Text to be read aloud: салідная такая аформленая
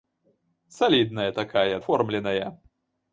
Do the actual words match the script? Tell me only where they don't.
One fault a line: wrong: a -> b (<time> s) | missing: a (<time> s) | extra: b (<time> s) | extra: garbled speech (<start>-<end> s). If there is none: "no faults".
no faults